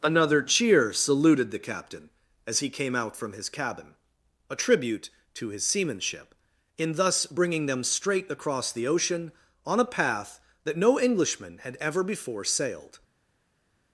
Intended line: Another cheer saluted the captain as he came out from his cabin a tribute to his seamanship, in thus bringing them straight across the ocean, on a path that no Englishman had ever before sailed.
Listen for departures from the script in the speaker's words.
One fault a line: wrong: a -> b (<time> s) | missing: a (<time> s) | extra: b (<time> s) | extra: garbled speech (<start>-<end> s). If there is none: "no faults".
no faults